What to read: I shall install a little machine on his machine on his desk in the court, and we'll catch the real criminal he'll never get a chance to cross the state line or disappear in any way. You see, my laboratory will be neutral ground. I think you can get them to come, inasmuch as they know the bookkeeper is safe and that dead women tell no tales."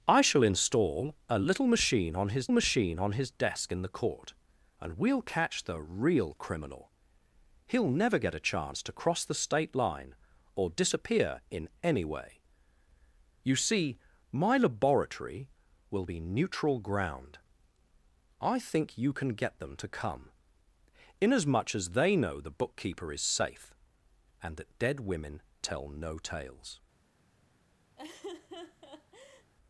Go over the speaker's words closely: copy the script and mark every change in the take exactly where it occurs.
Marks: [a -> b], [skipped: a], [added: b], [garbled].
I shall install a little machine on his machine on his desk in the court, and we'll catch the real criminal he'll never get a chance to cross the state line or disappear in any way. You see, my laboratory will be neutral ground. I think you can get them to come, inasmuch as they know the bookkeeper is safe and that dead women tell no tales."